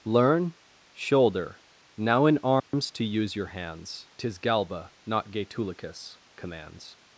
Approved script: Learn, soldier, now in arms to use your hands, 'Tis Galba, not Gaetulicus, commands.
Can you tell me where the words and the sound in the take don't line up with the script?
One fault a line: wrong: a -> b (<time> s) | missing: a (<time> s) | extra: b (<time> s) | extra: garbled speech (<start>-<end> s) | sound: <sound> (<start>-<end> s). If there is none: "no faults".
wrong: soldier -> shoulder (0.9 s)
sound: dropout (2.6-2.7 s)